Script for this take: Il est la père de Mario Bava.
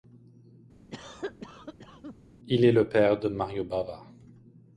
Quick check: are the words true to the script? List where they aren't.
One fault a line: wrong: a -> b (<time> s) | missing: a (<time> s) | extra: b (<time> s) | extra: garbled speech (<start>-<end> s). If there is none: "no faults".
wrong: la -> le (2.7 s)